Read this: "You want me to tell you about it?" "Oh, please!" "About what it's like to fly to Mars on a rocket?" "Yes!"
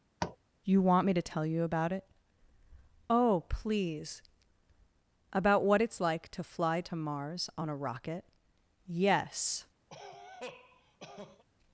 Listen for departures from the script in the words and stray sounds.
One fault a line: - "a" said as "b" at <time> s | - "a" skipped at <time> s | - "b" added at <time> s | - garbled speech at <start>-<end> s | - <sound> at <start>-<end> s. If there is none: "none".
- tap at 0.2-0.4 s
- cough at 9.9-11.4 s